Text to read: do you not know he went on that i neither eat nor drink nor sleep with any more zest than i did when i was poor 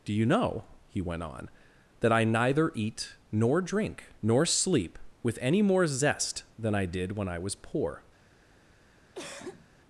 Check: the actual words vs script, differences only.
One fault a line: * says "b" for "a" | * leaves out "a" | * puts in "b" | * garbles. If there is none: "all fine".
* leaves out "not"